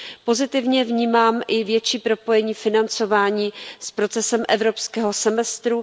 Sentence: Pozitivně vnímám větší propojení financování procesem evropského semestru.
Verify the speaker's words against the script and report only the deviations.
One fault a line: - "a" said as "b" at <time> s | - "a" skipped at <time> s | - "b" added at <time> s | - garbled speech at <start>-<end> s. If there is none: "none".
- "i" added at 1.5 s
- "s" added at 3.8 s